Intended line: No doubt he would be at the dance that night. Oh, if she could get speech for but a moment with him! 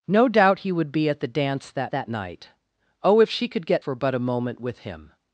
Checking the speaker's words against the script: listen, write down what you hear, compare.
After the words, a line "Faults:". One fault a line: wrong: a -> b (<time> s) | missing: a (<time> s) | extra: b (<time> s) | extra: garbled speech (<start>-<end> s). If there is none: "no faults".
No doubt he would be at the dance that that night. Oh, if she could get for but a moment with him!
Faults:
extra: that (1.9 s)
missing: speech (3.9 s)